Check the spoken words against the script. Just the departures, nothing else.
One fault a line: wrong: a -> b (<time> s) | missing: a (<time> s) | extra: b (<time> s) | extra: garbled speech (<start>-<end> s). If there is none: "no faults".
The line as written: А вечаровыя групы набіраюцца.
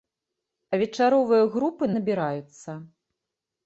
no faults